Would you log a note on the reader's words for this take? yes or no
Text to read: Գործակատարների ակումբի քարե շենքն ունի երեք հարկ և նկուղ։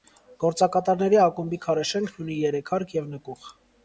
no